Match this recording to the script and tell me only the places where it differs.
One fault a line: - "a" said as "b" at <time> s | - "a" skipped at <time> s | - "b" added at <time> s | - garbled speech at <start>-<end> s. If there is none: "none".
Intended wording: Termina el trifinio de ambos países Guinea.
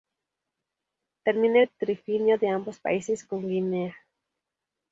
- "con" added at 3.2 s